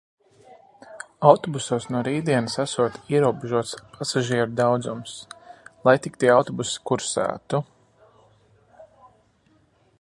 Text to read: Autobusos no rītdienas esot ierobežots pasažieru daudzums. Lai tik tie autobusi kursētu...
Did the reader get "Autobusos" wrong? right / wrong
right